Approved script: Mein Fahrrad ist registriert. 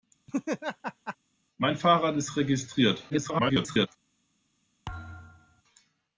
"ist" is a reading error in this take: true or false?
false